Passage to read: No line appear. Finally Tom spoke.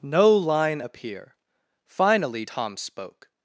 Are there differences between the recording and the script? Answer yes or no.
no